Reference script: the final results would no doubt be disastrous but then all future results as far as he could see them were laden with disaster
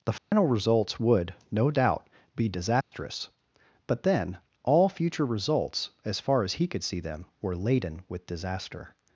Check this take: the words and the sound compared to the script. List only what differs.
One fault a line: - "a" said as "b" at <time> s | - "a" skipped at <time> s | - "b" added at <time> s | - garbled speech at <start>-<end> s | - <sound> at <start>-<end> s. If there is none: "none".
- dropout at 0.2-0.3 s
- dropout at 2.8-2.9 s